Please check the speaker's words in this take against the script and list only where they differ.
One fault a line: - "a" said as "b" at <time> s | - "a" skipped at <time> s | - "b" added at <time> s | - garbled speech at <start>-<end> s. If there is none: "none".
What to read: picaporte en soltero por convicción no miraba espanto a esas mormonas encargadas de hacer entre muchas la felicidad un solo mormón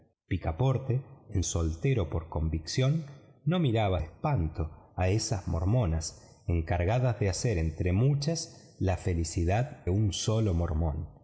none